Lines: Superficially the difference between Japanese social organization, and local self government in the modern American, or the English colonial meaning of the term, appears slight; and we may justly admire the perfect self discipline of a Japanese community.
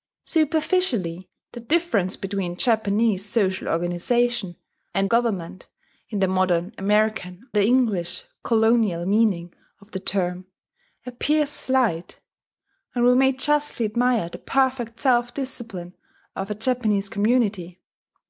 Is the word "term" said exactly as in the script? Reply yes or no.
yes